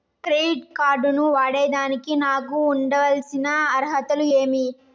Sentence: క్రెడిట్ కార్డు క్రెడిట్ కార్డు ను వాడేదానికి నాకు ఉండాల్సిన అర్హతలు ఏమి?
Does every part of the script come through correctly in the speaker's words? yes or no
no